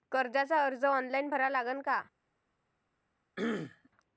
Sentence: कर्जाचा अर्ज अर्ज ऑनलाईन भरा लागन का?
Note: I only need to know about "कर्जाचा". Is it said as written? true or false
true